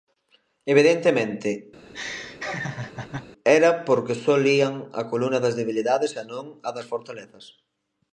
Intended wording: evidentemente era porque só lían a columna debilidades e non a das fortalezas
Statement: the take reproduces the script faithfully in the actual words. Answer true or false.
false